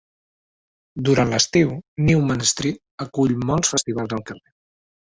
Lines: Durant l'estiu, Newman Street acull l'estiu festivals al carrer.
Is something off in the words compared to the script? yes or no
yes